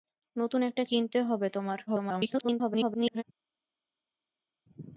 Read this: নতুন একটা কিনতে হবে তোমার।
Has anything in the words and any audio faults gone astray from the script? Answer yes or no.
yes